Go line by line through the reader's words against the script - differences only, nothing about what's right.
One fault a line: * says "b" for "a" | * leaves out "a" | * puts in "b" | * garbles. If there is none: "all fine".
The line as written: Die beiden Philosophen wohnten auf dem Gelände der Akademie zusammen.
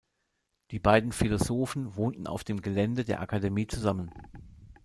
all fine